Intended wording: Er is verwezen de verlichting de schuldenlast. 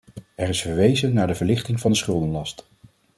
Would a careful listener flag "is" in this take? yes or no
no